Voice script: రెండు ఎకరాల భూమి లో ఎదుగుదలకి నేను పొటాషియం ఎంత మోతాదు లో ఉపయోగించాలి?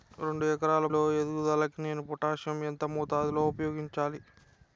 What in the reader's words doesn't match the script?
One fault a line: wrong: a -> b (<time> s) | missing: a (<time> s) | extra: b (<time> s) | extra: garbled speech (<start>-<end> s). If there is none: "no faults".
missing: భూమి (0.8 s)